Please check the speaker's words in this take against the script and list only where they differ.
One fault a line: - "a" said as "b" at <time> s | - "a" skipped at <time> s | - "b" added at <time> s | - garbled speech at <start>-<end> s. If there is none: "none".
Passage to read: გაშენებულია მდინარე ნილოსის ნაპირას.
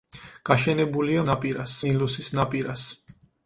- "მდინარე" said as "ნაპირას" at 1.3 s